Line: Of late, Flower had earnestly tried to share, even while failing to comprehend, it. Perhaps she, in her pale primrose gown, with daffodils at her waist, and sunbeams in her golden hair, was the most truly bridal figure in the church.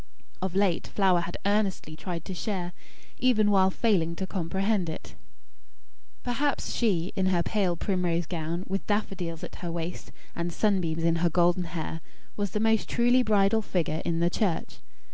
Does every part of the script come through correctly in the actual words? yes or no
yes